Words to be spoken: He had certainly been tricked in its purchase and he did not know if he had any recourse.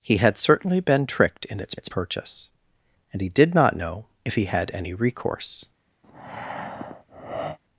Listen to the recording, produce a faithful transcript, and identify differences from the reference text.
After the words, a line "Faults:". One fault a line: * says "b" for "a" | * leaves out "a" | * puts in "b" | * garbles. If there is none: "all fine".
He had certainly been tricked in its its purchase and he did not know if he had any recourse.
Faults:
* puts in "its"